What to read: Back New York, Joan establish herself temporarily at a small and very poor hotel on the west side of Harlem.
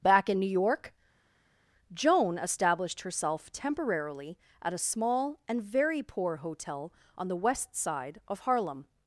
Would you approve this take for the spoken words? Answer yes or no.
no